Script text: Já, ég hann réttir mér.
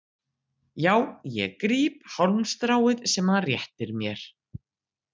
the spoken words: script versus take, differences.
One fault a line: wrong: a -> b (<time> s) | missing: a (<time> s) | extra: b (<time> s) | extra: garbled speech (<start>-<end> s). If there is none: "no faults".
extra: gríp hálmstráið sem (1.6 s)